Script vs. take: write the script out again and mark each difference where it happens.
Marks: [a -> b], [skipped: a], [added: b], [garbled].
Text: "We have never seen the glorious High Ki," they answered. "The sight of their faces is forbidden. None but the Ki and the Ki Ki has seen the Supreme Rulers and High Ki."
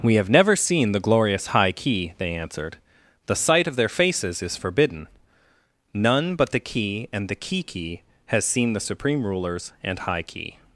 "We have never seen the glorious High Ki," they answered. "The sight of their faces is forbidden. None but the Ki and the Ki Ki has seen the Supreme Rulers and High Ki."